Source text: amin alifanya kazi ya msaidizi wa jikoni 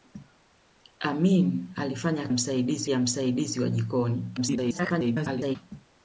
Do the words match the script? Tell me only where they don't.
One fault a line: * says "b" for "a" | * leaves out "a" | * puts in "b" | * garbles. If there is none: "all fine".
* says "msaidizi" for "kazi"
* garbles